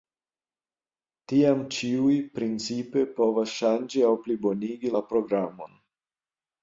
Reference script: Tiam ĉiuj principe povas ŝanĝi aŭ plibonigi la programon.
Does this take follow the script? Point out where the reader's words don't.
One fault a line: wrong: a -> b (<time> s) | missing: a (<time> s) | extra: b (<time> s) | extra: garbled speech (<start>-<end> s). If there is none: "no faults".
no faults